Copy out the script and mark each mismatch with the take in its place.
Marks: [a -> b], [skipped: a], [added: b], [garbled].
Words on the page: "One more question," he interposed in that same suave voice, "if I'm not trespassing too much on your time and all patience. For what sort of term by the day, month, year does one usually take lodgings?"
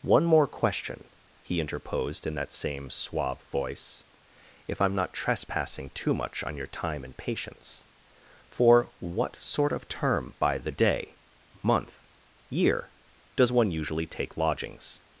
"One more question," he interposed in that same suave voice, "if I'm not trespassing too much on your time and [skipped: all] patience. For what sort of term by the day, month, year does one usually take lodgings?"